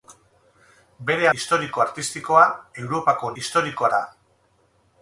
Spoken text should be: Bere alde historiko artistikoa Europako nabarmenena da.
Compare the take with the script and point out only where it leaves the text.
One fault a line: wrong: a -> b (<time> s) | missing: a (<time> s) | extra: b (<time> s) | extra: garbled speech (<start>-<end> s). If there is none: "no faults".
missing: alde (1.3 s)
wrong: nabarmenena -> historiko (3.4 s)